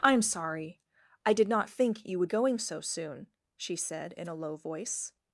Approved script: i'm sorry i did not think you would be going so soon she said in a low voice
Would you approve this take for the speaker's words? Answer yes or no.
no